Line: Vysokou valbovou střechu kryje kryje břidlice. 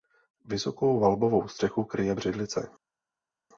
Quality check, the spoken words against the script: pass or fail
fail